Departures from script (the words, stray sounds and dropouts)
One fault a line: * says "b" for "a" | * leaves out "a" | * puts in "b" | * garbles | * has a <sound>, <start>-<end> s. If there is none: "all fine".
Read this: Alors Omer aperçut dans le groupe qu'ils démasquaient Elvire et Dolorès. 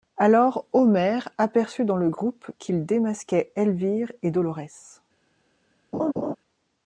* has a laugh, 5.9-6.4 s